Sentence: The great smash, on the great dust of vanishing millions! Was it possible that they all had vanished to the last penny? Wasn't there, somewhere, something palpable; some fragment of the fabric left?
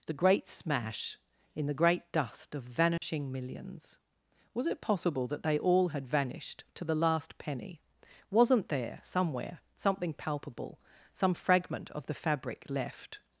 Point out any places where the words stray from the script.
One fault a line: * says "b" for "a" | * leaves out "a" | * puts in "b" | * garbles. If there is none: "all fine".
* says "in" for "on"